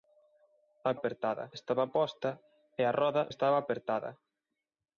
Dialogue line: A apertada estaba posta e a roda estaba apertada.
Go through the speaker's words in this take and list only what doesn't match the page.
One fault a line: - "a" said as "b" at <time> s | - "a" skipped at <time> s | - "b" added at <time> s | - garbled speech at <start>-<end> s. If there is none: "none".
none